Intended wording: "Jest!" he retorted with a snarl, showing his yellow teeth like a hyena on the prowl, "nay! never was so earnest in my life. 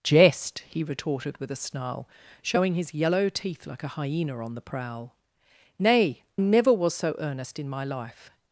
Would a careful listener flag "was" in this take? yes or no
no